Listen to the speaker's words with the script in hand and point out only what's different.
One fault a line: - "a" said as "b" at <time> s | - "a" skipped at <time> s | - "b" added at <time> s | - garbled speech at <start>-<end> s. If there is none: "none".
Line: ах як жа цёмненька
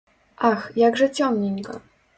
none